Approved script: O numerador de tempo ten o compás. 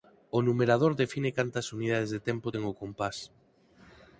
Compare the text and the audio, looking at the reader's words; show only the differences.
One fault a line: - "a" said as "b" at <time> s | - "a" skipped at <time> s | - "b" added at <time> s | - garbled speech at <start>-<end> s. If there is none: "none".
- "define cantas unidades" added at 1.0 s